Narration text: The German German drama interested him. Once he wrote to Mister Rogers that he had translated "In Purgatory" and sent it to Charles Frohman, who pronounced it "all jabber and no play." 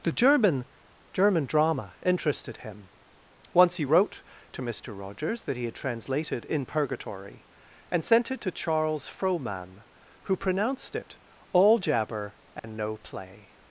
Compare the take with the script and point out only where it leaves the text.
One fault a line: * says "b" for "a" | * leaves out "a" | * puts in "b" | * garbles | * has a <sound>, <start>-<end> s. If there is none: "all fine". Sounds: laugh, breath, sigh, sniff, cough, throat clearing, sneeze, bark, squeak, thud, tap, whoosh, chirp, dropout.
* has a dropout, 12.6-12.6 s